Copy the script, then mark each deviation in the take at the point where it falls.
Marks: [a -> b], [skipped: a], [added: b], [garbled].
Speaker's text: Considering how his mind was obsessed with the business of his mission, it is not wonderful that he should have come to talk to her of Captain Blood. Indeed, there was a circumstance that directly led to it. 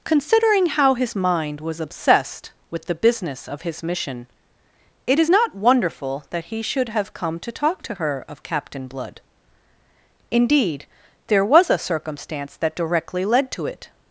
Considering how his mind was obsessed with the business of his mission, it is not wonderful that he should have come to talk to her of Captain Blood. Indeed, there was a circumstance that directly led to it.